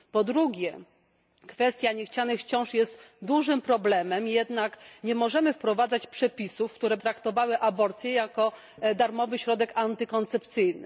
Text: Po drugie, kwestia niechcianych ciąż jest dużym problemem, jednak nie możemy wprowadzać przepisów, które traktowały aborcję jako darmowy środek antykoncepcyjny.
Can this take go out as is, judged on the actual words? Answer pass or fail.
pass